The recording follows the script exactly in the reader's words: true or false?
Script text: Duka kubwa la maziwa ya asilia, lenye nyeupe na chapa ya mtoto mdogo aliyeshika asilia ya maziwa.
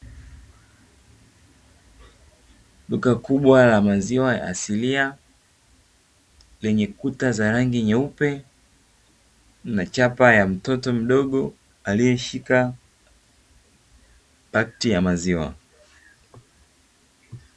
false